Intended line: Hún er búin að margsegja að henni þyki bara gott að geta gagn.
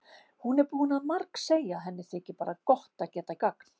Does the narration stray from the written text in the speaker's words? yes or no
no